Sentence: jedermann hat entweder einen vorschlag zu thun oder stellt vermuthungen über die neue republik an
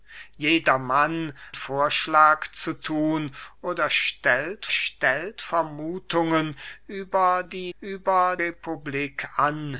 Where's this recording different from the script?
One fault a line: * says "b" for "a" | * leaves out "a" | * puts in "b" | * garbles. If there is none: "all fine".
* leaves out "hat entweder einen"
* puts in "stellt"
* says "über" for "neue"